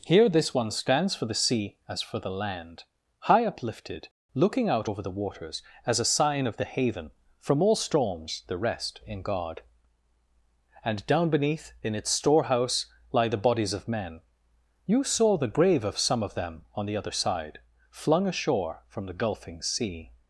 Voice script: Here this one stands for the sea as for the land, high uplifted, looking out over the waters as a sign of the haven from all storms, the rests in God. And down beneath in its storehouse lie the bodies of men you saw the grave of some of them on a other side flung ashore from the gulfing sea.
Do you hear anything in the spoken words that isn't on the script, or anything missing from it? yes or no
yes